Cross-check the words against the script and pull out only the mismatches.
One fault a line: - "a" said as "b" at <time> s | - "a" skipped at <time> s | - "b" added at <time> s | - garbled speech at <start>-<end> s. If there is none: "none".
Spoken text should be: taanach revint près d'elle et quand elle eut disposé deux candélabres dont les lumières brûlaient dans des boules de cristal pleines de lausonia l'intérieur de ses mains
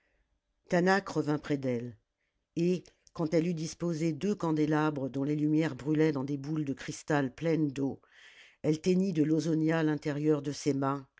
- "d'eau elle teignit" added at 7.7 s